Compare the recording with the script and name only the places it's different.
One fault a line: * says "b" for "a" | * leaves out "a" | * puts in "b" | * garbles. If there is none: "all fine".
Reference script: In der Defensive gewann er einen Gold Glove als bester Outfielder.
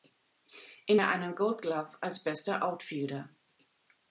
* leaves out "der Defensive gewann"